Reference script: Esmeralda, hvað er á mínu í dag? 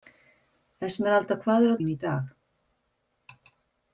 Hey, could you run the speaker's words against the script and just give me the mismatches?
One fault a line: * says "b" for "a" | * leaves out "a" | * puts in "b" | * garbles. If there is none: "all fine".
all fine